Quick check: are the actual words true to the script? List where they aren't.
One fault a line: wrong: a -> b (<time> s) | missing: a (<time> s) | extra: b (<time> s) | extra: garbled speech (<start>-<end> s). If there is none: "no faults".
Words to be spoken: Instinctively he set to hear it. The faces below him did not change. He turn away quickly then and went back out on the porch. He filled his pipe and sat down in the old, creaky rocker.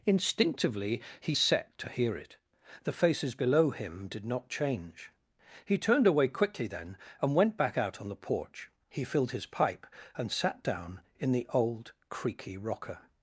wrong: turn -> turned (5.8 s)